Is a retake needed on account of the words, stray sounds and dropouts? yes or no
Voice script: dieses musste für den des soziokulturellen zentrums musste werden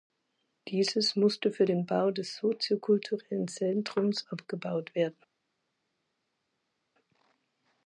yes